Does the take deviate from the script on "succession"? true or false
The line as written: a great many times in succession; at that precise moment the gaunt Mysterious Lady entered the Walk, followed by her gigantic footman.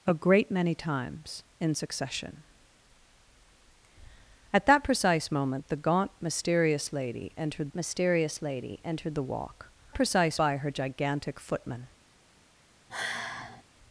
false